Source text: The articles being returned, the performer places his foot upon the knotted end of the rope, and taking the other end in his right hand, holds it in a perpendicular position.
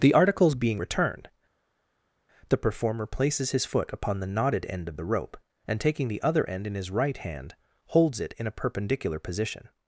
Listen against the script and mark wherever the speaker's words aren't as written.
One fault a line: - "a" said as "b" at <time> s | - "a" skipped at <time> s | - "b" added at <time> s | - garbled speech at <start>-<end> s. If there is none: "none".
none